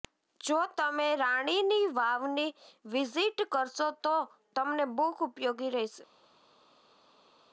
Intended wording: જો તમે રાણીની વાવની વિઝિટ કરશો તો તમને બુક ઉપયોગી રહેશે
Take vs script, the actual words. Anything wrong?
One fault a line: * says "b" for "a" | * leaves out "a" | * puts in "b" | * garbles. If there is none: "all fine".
all fine